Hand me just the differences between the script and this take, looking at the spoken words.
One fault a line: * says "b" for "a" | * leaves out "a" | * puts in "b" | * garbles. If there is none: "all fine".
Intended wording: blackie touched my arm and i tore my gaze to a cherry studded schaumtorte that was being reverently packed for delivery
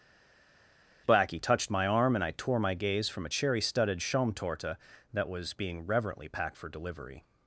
* says "from" for "to"